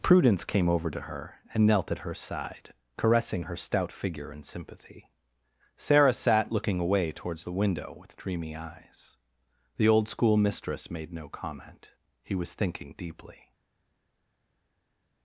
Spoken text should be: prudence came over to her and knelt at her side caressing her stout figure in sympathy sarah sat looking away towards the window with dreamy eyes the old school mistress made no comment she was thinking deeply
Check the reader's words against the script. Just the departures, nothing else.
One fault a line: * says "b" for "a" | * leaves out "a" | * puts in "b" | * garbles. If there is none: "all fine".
* says "he" for "she"